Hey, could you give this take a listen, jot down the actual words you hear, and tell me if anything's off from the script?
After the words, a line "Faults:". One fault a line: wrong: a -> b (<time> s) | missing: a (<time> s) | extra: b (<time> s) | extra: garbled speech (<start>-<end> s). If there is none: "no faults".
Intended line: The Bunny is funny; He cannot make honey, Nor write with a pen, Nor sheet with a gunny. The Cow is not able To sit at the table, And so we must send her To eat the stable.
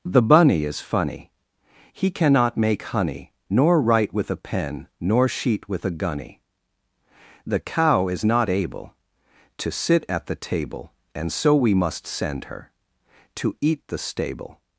The Bunny is funny; He cannot make honey, Nor write with a pen, Nor sheet with a gunny. The Cow is not able To sit at the table, And so we must send her To eat the stable.
Faults:
no faults